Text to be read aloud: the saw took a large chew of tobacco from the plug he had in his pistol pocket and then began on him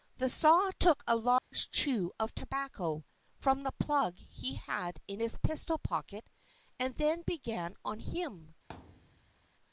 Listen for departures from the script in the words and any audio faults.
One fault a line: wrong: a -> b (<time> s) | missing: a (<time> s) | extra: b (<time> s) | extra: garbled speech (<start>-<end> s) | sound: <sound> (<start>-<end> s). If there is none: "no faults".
sound: dropout (1.4-1.5 s)
sound: thud (8.7-9.5 s)